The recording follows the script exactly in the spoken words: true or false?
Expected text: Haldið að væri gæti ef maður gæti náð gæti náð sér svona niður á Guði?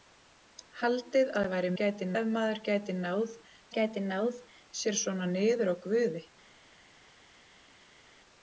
true